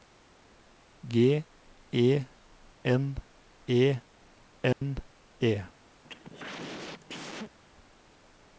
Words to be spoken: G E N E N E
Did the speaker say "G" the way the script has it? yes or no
yes